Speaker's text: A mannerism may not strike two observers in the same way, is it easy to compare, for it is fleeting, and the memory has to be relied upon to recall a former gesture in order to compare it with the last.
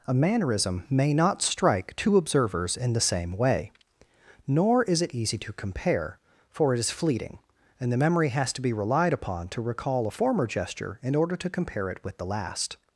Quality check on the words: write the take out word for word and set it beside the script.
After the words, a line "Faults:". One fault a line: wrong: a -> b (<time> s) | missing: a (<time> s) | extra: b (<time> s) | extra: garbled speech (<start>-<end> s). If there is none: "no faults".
A mannerism may not strike two observers in the same way, nor is it easy to compare, for it is fleeting, and the memory has to be relied upon to recall a former gesture in order to compare it with the last.
Faults:
extra: nor (4.5 s)